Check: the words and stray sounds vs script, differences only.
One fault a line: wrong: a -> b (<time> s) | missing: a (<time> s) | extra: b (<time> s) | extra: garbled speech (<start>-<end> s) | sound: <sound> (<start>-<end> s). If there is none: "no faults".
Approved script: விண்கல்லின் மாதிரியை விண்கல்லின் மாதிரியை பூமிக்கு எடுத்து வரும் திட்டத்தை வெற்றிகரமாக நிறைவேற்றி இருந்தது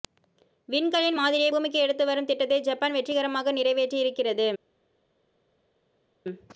missing: விண்கல்லின் மாதிரியை (1.5 s)
extra: ஜப்பான் (2.6 s)
wrong: இருந்தது -> இருக்கிறது (4.0 s)